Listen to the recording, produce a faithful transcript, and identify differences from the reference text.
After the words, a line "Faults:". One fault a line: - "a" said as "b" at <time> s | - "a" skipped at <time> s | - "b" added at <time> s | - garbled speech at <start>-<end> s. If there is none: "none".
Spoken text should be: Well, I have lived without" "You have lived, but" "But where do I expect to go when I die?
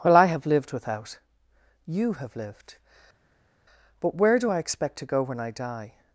Well, I have lived without" "You have lived, but" where do I expect to go when I die?
Faults:
- "But" skipped at 4.1 s